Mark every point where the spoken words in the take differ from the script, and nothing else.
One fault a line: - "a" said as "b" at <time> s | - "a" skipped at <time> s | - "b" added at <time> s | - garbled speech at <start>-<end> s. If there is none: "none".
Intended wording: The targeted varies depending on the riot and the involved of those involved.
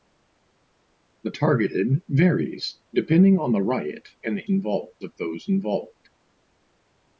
none